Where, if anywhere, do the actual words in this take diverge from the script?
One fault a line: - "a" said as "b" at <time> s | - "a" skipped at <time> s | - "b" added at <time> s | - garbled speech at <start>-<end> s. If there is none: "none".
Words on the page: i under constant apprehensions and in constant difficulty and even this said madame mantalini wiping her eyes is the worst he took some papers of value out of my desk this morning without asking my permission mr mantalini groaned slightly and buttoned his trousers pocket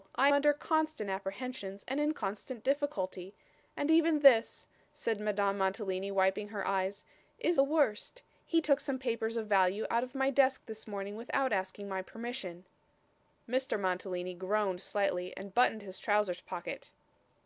none